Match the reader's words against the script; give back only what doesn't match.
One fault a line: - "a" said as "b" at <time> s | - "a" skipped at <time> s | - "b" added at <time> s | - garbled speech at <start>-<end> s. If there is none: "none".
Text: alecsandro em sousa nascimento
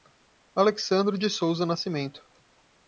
- "em" said as "de" at 1.1 s